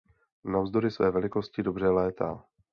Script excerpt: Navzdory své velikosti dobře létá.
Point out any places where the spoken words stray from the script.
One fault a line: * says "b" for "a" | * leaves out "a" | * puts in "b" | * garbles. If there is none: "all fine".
all fine